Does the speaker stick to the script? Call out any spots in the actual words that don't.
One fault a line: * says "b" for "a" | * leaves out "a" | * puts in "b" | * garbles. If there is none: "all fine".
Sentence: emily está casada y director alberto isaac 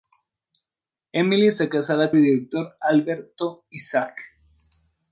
all fine